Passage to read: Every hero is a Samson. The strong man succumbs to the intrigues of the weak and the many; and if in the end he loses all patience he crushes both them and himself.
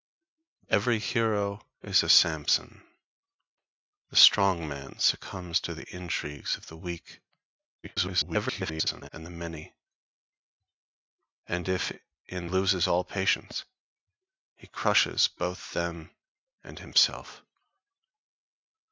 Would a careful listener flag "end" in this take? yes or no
yes